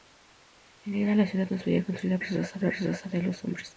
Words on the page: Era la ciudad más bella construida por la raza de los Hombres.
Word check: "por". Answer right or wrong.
wrong